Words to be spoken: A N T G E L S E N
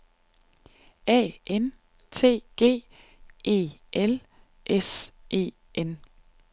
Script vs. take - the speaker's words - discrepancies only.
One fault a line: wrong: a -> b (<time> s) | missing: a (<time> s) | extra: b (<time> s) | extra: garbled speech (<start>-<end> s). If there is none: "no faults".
no faults